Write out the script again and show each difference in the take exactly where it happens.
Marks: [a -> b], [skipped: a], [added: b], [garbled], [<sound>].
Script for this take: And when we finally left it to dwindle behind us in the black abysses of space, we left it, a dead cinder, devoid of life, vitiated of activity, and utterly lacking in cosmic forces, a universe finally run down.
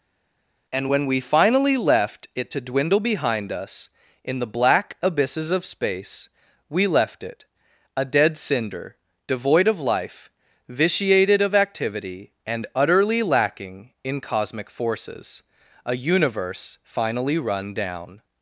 And when we finally left it to dwindle behind us in the black abysses of space, we left it, a dead cinder, devoid of life, vitiated of activity, and utterly lacking in cosmic forces, a universe finally run down.